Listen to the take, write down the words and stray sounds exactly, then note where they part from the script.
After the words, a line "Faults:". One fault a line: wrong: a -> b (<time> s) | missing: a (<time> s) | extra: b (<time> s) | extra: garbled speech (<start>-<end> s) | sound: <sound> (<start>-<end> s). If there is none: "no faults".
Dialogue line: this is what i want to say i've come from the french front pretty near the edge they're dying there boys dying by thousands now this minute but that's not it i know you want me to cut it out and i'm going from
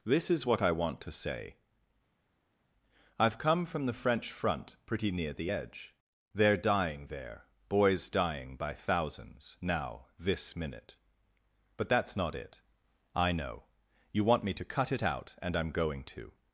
this is what i want to say i've come from the french front pretty near the edge they're dying there boys dying by thousands now this minute but that's not it i know you want me to cut it out and i'm going to
Faults:
wrong: from -> to (16.1 s)